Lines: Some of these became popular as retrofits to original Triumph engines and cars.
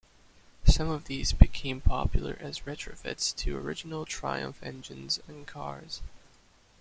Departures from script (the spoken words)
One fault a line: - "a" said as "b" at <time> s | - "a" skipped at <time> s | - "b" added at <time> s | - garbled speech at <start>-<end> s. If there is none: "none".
none